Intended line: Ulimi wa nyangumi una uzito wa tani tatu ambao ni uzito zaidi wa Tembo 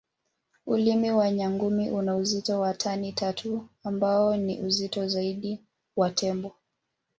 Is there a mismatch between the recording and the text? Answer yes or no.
no